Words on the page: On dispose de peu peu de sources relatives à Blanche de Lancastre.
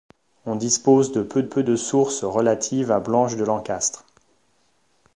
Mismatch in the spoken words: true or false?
false